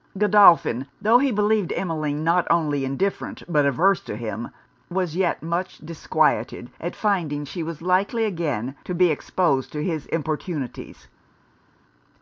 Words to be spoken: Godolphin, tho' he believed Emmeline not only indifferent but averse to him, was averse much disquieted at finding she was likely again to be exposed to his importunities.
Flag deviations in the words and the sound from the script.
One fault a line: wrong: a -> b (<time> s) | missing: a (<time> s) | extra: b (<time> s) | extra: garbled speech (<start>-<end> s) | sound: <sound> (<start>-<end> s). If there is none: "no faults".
wrong: averse -> yet (5.2 s)